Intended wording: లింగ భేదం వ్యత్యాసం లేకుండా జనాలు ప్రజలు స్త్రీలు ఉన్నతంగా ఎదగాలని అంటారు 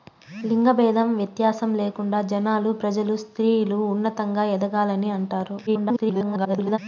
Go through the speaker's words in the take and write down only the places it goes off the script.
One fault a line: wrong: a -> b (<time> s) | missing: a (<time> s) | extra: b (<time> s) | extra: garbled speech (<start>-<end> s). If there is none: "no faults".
extra: garbled speech (5.7-6.8 s)